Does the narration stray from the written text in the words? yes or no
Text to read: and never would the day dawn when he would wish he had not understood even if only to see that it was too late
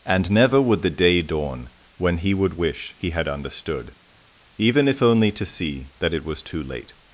yes